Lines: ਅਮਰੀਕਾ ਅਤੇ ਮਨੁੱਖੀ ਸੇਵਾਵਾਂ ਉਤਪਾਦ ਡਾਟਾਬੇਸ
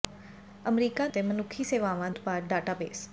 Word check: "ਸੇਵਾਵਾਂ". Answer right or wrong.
right